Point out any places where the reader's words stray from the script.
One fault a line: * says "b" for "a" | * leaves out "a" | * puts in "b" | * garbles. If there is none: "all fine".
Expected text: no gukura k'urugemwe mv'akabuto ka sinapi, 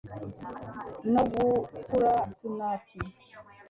* leaves out "k'urugemwe mv'akabuto ka"